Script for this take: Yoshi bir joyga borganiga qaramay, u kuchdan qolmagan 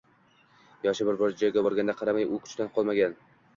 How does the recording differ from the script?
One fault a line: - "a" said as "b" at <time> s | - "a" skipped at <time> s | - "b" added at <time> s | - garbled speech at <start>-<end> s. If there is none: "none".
none